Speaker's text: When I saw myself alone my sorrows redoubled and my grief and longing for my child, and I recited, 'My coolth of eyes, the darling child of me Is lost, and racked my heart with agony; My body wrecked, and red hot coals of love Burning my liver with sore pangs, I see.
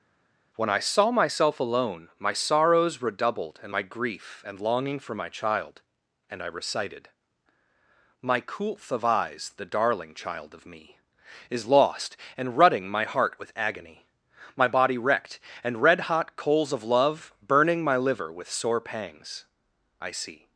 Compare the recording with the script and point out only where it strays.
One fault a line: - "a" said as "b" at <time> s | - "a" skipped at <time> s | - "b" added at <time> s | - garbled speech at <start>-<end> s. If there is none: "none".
- "racked" said as "rutting" at 12.6 s